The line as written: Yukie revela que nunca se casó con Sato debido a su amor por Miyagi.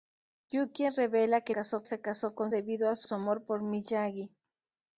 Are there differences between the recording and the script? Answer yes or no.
yes